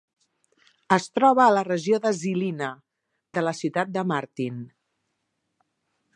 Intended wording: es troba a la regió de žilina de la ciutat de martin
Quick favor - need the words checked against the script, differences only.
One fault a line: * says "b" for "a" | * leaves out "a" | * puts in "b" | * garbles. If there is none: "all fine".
all fine